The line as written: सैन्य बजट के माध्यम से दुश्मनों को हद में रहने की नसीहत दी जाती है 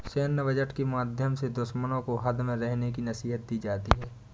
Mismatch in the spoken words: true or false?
false